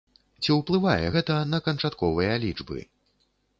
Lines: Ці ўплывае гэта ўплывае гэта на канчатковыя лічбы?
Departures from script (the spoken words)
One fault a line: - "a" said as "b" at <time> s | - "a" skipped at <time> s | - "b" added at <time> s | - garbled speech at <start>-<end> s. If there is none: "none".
- "ўплывае гэта" skipped at 1.4 s